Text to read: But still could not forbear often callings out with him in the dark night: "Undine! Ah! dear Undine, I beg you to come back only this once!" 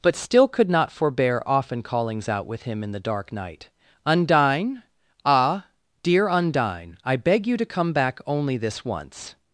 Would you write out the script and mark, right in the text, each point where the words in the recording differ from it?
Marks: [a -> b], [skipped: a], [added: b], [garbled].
But still could not forbear often callings out with him in the dark night: "Undine! Ah! dear Undine, I beg you to come back only this once!"